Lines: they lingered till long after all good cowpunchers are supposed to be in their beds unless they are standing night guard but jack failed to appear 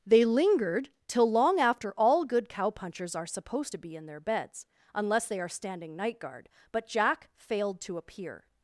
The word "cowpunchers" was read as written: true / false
true